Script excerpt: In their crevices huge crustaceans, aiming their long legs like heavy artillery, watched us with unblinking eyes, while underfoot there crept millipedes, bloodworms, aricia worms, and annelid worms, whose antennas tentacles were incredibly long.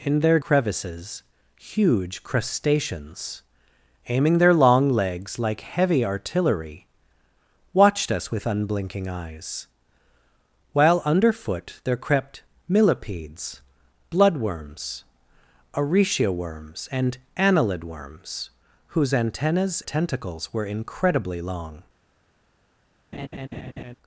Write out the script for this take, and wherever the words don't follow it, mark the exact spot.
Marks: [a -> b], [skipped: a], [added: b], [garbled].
In their crevices huge crustaceans, aiming their long legs like heavy artillery, watched us with unblinking eyes, while underfoot there crept millipedes, bloodworms, aricia worms, and annelid worms, whose antennas tentacles were incredibly long.